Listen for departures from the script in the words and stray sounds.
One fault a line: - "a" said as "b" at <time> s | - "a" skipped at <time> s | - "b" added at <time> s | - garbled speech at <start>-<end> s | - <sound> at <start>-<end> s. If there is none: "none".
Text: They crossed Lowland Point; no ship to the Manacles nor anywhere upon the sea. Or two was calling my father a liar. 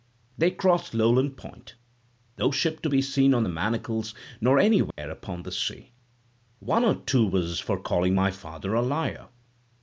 - "be seen on" added at 2.9 s
- dropout at 4.9-5.0 s
- "One" added at 6.6 s
- "for" added at 7.6 s